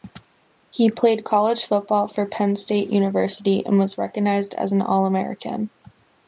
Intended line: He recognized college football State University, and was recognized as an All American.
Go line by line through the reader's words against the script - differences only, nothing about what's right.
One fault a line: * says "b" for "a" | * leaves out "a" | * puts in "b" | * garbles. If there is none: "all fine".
* says "played" for "recognized"
* puts in "for Penn"